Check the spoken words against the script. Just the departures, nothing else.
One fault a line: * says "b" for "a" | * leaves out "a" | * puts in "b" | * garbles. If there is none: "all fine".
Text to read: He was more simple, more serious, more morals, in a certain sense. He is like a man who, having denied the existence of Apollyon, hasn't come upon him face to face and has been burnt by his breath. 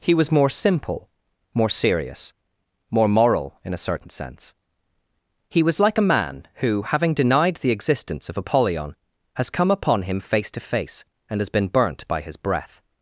* says "moral" for "morals"
* says "was" for "is"
* says "has" for "hasn't"